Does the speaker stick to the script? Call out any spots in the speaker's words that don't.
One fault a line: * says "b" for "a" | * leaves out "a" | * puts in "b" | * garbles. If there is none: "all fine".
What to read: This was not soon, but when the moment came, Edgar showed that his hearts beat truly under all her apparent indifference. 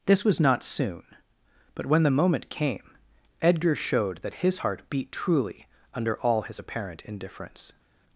* says "heart" for "hearts"
* says "his" for "her"